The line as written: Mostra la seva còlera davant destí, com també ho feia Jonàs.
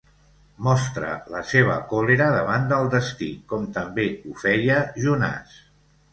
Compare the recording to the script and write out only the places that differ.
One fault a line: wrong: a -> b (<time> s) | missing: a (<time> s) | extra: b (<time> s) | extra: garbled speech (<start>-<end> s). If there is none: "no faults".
extra: del (2.7 s)